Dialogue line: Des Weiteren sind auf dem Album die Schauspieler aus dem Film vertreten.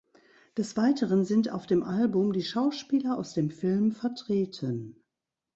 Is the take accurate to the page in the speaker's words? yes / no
yes